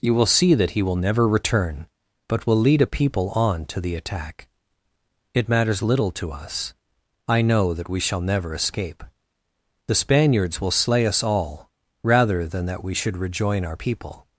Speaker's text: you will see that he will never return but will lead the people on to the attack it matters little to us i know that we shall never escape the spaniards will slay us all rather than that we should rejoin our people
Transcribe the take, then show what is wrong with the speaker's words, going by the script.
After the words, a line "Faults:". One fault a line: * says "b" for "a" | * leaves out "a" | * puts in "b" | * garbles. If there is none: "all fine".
you will see that he will never return but will lead a people on to the attack it matters little to us i know that we shall never escape the spaniards will slay us all rather than that we should rejoin our people
Faults:
* says "a" for "the"